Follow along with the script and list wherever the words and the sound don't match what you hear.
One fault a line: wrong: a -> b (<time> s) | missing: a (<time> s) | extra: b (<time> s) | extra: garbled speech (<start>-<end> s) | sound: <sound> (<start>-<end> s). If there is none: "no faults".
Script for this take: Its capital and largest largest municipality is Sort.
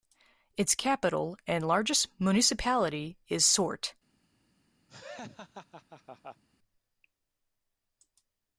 missing: largest (2.1 s)
sound: laugh (4.9-6.4 s)